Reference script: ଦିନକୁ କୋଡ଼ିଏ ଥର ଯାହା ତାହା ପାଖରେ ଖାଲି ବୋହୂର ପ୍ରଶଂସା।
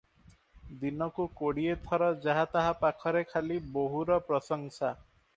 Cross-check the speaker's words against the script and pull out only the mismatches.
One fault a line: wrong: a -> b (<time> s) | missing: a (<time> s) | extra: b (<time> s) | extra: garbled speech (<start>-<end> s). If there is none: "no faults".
no faults